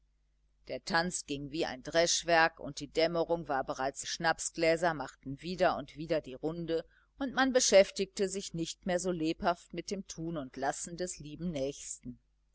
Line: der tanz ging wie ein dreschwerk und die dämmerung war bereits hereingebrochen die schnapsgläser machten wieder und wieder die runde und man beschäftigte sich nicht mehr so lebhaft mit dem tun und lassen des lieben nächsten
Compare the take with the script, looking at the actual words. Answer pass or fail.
fail